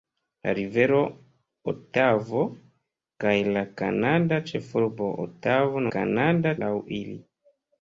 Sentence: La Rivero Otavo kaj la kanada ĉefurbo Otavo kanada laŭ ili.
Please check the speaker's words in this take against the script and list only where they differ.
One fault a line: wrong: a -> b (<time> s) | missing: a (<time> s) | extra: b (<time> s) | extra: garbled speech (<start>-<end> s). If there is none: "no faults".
no faults